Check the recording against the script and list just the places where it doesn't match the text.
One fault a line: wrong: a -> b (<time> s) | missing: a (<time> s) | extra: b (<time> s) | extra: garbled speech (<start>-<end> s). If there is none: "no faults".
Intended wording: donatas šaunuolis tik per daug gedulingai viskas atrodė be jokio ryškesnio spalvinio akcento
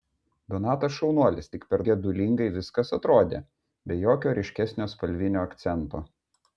missing: daug (1.8 s)